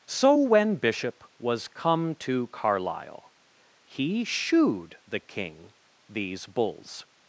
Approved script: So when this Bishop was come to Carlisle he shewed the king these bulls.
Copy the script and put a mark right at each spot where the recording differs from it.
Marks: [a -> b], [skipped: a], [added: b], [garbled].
So when [skipped: this] Bishop was come to Carlisle he shewed the king these bulls.